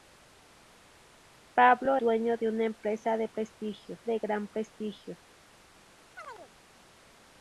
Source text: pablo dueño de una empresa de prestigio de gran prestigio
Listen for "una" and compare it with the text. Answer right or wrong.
right